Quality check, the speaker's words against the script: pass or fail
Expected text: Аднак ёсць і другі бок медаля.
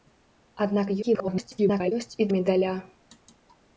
fail